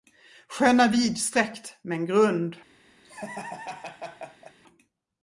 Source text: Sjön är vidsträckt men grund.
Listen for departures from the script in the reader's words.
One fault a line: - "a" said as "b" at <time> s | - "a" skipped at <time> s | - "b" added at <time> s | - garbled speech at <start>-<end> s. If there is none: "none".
none